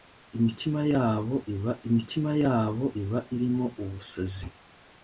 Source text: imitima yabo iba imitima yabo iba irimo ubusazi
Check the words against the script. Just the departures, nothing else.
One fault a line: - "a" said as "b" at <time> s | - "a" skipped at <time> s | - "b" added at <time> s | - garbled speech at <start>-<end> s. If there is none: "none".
none